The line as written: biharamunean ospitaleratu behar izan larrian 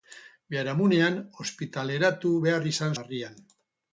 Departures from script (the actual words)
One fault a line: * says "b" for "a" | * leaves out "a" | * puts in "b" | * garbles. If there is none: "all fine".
all fine